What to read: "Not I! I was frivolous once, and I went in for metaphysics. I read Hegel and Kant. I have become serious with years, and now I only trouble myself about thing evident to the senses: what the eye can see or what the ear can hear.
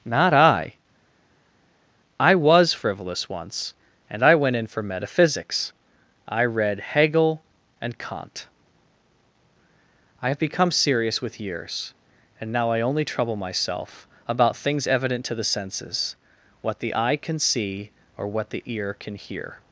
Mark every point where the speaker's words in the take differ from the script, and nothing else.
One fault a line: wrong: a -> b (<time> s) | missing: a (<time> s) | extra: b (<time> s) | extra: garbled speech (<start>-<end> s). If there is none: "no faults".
wrong: thing -> things (14.6 s)